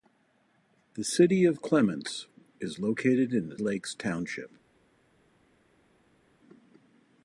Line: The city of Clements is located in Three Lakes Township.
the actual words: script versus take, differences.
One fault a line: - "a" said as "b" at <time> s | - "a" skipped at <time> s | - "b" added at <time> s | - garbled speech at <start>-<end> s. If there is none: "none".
- "Three" skipped at 3.5 s